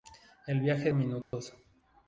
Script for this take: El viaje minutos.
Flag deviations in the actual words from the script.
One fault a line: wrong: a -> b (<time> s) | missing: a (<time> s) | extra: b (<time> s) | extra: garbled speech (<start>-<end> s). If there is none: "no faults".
no faults